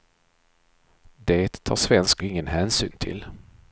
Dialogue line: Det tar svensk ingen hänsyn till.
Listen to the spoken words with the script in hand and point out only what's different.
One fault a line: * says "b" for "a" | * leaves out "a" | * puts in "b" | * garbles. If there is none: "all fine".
all fine